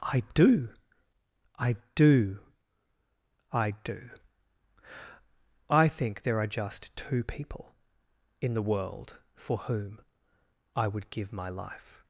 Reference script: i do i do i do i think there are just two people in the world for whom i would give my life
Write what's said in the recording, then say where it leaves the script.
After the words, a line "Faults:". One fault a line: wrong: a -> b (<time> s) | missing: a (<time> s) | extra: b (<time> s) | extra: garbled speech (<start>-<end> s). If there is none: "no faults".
i do i do i do i think there are just two people in the world for whom i would give my life
Faults:
no faults